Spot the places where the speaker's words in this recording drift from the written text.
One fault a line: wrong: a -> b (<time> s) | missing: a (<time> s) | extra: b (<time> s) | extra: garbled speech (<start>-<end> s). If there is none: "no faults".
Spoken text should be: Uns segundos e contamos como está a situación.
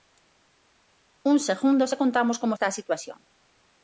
no faults